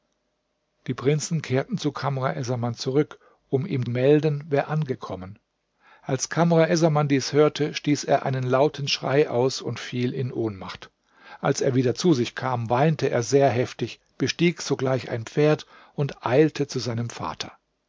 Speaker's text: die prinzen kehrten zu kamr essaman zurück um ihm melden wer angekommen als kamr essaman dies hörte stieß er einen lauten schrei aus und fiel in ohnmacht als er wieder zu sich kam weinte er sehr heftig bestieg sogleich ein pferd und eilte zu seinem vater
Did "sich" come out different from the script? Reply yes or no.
no